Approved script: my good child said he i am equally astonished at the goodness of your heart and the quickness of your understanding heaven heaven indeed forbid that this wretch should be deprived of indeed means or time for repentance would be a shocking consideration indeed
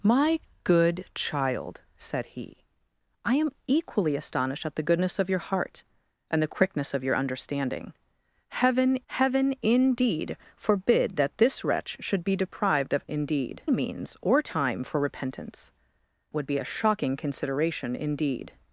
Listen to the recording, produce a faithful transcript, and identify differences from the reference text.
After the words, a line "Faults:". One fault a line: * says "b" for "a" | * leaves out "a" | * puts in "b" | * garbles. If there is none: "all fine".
my good child said he i am equally astonished at the goodness of your heart and the quickness of your understanding heaven heaven indeed forbid that this wretch should be deprived of indeed means or time for repentance would be a shocking consideration indeed
Faults:
all fine